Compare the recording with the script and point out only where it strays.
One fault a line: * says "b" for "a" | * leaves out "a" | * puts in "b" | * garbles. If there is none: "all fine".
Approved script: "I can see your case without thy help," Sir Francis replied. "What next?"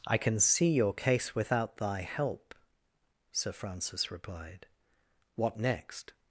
all fine